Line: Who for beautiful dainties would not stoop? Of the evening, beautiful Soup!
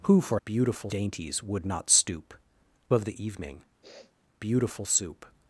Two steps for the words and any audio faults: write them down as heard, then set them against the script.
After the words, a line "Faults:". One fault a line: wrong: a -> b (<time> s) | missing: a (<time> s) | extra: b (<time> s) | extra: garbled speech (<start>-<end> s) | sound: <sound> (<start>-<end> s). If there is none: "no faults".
Who for beautiful dainties would not stoop? Of the evening, beautiful Soup!
Faults:
sound: sniff (3.8-4.1 s)